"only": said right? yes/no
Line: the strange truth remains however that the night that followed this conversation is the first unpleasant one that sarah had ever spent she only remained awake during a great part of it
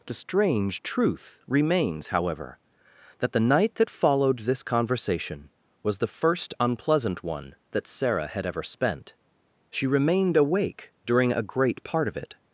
no